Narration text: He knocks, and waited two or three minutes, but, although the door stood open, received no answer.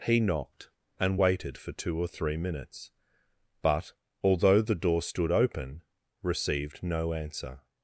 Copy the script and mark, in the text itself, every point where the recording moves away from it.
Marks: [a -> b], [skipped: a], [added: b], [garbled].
He [knocks, -> knocked] and waited [added: for] two or three minutes, but, although the door stood open, received no answer.